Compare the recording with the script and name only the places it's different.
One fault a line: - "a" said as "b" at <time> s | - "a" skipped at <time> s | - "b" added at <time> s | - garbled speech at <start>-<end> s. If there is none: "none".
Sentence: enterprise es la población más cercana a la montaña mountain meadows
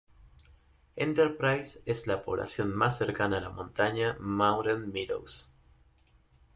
none